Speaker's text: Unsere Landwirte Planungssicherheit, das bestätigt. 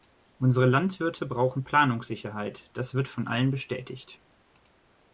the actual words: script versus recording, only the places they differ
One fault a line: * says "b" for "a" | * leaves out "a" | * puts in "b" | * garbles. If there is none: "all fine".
* puts in "brauchen"
* puts in "wird von allen"